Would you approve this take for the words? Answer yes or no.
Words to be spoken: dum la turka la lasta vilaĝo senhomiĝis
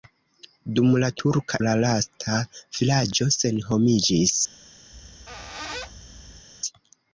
yes